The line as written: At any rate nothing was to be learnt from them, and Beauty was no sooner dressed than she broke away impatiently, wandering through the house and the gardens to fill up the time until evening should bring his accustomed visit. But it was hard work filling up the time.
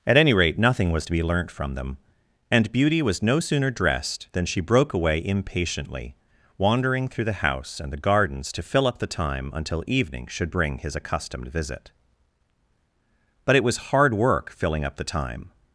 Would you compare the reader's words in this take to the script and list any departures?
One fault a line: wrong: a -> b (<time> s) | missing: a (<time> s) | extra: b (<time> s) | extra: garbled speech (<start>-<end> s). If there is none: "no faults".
no faults